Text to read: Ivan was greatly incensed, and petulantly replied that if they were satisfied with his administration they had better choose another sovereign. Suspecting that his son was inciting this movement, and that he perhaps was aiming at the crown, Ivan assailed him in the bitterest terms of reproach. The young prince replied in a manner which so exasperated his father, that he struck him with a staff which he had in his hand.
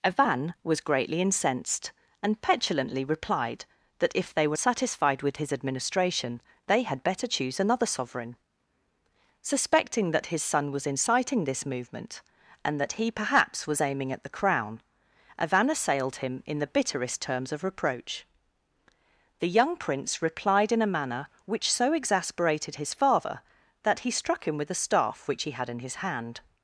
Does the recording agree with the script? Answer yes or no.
yes